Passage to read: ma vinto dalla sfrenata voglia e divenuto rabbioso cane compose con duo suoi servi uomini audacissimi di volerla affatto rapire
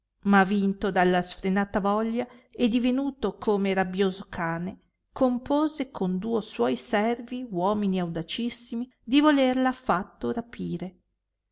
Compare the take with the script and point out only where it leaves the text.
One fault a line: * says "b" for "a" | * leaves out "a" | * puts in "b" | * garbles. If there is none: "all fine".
* puts in "come"